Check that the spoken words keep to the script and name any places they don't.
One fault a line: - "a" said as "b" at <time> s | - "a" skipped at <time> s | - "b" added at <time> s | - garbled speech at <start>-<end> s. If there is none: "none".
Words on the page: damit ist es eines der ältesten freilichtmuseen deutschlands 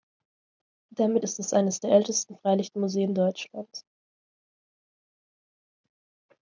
none